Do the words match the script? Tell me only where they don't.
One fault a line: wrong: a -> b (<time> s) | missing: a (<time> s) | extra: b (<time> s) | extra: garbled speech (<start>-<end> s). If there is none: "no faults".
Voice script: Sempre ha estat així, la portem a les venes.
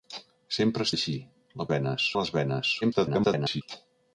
missing: estat (0.9 s)
wrong: portem -> venes (1.7 s)
extra: garbled speech (2.8-3.6 s)